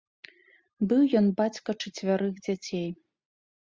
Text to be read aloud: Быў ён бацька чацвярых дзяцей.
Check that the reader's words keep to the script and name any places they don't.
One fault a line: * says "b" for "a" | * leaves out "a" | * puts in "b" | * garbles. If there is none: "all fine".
all fine